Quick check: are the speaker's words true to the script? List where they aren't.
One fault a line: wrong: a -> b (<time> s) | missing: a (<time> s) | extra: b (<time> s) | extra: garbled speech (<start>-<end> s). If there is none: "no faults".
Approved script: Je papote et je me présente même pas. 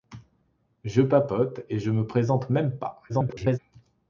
extra: garbled speech (3.1-3.6 s)